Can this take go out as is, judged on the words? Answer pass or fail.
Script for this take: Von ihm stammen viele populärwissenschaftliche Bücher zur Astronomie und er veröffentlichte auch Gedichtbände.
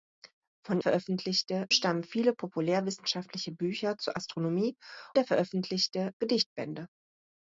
fail